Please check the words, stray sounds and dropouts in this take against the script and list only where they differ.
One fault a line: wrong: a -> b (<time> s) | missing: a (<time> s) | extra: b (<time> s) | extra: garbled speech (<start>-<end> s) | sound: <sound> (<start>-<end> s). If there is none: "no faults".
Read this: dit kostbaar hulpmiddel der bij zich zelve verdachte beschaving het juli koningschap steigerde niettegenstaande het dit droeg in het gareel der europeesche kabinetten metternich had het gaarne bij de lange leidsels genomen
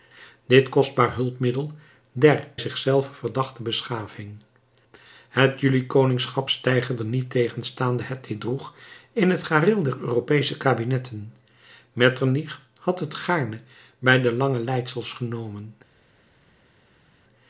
missing: bij (2.5 s)